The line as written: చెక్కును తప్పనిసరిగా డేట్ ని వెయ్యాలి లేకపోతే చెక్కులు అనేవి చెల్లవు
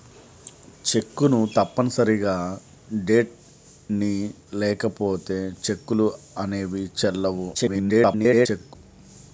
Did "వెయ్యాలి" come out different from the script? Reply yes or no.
yes